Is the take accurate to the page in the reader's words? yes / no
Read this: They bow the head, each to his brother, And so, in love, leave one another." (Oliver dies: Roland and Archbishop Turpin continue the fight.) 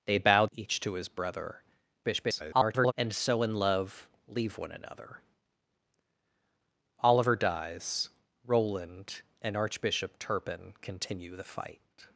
no